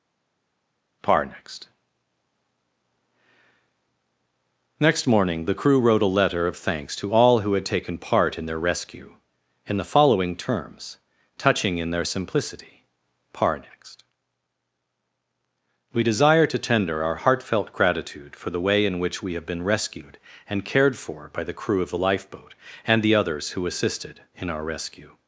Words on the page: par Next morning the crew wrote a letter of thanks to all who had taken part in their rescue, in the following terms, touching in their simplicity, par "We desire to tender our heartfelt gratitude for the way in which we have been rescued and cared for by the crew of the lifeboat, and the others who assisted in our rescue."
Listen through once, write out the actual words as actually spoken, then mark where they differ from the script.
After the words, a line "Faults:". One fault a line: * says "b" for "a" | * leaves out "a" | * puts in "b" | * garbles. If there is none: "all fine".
par Next next morning the crew wrote a letter of thanks to all who had taken part in their rescue, in the following terms, touching in their simplicity, par next "We desire to tender our heartfelt gratitude for the way in which we have been rescued and cared for by the crew of the lifeboat, and the others who assisted in our rescue."
Faults:
* puts in "next"
* puts in "next"